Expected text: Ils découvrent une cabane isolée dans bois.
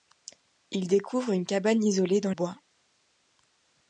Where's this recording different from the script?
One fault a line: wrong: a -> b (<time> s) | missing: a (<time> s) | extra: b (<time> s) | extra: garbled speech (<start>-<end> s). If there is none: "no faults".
no faults